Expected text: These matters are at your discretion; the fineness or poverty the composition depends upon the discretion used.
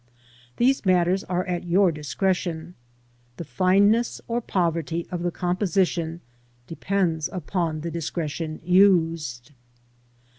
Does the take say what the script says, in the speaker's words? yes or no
no